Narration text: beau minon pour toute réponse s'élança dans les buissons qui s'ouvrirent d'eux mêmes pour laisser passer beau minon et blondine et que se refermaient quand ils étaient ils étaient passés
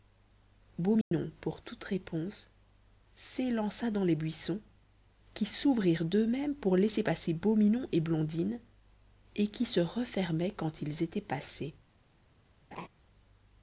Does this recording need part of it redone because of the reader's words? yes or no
yes